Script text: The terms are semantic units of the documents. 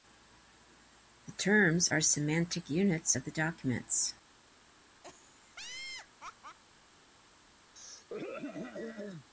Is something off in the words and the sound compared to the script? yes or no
yes